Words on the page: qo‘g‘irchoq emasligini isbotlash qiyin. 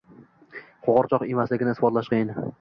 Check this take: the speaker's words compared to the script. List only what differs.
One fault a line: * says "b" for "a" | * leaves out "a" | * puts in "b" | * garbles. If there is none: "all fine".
all fine